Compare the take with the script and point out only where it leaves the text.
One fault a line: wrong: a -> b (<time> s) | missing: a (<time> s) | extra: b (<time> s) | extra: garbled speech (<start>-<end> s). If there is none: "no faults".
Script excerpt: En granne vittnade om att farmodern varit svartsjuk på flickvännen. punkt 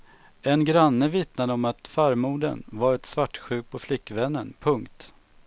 no faults